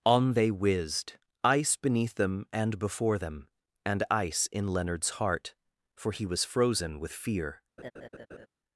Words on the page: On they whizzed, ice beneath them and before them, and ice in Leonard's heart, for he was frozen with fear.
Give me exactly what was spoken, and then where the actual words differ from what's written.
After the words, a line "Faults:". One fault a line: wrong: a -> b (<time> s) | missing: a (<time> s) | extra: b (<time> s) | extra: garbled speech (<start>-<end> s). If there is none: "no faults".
On they whizzed, ice beneath them and before them, and ice in Leonard's heart, for he was frozen with fear.
Faults:
no faults